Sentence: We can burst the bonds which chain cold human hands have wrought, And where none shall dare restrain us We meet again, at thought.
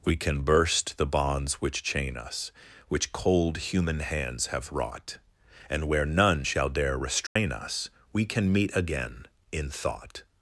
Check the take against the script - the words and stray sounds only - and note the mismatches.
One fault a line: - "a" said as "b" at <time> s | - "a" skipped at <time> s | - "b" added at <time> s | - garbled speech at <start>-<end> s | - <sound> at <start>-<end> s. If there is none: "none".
- "us Which" added at 2.2 s
- dropout at 7.3-7.4 s
- "can" added at 8.2 s
- "at" said as "in" at 9.5 s